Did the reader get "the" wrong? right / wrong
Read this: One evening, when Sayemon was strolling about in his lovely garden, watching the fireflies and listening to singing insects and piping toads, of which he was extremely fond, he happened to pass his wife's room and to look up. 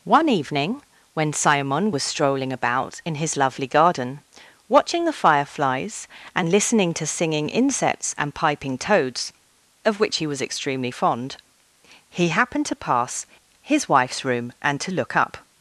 right